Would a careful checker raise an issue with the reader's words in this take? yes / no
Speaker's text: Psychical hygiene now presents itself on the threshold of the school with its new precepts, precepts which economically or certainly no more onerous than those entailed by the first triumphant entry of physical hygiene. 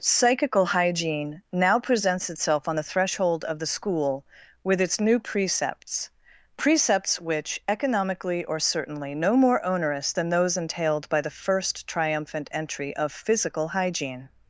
no